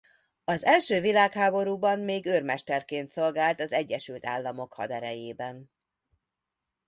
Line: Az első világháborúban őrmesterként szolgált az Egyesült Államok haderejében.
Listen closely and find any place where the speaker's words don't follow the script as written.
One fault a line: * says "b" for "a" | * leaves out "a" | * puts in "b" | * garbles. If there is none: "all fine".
* puts in "még"